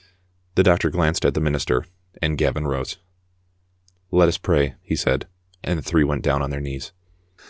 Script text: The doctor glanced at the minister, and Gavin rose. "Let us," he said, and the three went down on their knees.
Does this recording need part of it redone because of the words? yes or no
yes